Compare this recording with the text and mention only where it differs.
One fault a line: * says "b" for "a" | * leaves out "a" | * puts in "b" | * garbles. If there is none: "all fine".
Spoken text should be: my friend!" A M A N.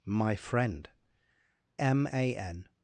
* leaves out "A"